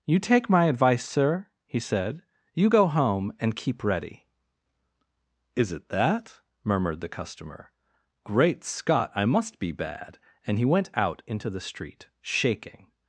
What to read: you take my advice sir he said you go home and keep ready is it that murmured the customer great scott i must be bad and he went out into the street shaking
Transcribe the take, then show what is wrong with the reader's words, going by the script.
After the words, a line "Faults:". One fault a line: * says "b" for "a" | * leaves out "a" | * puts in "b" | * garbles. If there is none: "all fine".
you take my advice sir he said you go home and keep ready is it that murmured the customer great scott i must be bad and he went out into the street shaking
Faults:
all fine